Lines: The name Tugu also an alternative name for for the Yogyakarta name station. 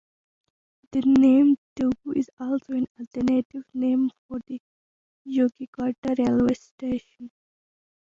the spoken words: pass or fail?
fail